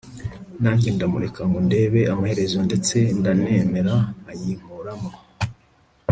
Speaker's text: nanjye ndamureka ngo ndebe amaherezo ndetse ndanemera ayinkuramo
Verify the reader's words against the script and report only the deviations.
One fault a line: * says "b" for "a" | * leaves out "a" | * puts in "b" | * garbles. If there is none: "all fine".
all fine